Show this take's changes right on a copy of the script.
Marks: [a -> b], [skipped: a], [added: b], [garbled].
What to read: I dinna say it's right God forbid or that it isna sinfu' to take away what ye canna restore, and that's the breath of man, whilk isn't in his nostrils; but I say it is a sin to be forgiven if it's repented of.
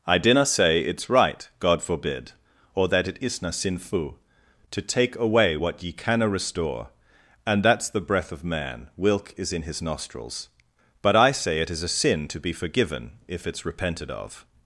I dinna say it's right God forbid or that it isna sinfu' to take away what ye canna restore, and that's the breath of man, whilk [isn't -> is] in his nostrils; but I say it is a sin to be forgiven if it's repented of.